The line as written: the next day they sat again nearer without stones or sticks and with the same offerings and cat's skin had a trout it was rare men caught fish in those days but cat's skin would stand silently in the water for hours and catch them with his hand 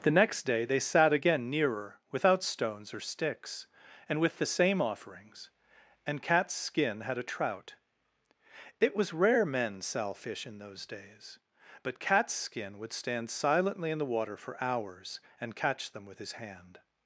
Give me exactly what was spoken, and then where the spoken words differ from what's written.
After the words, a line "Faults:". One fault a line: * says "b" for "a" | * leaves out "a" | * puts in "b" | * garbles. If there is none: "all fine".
the next day they sat again nearer without stones or sticks and with the same offerings and cat's skin had a trout it was rare men sell fish in those days but cat's skin would stand silently in the water for hours and catch them with his hand
Faults:
* says "sell" for "caught"